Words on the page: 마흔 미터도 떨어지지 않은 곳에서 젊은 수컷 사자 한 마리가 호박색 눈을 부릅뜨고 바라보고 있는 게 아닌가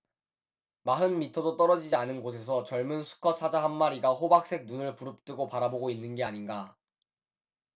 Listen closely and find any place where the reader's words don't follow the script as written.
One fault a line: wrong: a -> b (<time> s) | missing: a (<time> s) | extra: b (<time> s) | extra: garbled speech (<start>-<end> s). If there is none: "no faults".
no faults